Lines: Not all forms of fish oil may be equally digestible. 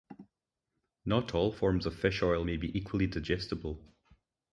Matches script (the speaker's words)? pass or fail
pass